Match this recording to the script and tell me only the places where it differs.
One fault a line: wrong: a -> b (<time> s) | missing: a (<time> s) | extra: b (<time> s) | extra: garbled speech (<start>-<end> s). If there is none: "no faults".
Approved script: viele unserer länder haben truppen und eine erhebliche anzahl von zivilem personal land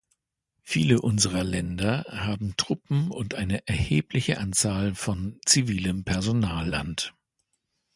no faults